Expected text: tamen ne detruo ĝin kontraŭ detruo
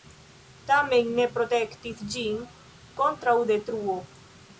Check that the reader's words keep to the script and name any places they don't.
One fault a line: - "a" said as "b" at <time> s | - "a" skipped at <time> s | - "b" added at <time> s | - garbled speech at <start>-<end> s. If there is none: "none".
- "detruo" said as "protektis" at 1.4 s